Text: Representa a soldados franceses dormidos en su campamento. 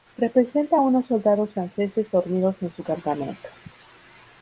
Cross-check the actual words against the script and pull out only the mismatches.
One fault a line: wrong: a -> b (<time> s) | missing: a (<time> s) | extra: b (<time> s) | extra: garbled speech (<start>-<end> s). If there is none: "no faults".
extra: unos (0.8 s)